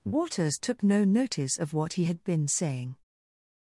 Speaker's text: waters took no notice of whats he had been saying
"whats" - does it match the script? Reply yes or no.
no